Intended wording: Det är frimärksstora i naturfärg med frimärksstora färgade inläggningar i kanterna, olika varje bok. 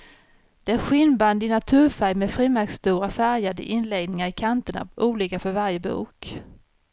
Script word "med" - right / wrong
right